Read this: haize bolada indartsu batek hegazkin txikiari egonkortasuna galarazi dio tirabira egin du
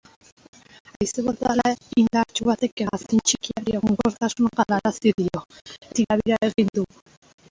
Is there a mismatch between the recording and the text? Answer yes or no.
no